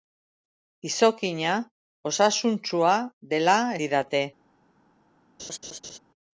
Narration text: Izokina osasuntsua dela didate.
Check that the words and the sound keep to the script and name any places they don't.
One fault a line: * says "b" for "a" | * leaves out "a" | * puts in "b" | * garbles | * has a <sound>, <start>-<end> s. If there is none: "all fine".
* has a laugh, 5.4-6.0 s